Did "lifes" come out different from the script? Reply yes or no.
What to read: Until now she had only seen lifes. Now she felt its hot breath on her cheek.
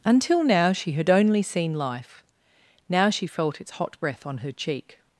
yes